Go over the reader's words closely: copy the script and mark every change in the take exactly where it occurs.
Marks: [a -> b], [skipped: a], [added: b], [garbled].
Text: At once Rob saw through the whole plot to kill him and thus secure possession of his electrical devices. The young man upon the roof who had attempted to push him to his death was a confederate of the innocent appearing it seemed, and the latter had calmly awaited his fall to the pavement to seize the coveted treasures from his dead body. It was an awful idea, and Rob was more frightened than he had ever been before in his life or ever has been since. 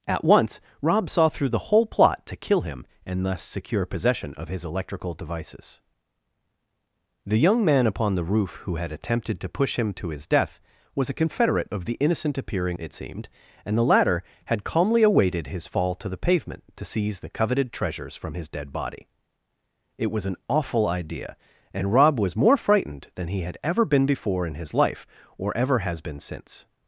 At once Rob saw through the whole plot to kill him and thus secure possession of his electrical devices. The young man upon the roof who had attempted to push him to his death was a confederate of the innocent appearing it seemed, and the latter had calmly awaited his fall to the pavement to seize the coveted treasures from his dead body. It was an awful idea, and Rob was more frightened than he had ever been before in his life or ever has been since.